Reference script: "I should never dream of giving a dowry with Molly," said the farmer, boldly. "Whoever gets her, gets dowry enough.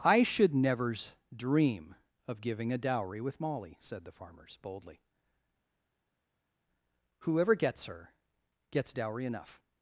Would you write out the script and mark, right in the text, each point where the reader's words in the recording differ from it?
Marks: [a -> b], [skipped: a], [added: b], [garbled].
"I should [never -> nevers] dream of giving a dowry with Molly," said the [farmer, -> farmers] boldly. "Whoever gets her, gets dowry enough.